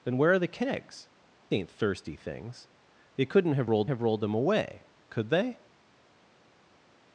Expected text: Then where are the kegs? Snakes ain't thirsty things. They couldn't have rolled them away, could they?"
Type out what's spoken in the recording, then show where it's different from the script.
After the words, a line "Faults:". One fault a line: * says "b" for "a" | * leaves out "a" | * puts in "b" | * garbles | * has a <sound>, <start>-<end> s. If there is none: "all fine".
Then where are the kegs? Ain't thirsty things. They couldn't have rolled have rolled them away, could they?"
Faults:
* leaves out "Snakes"
* puts in "have rolled"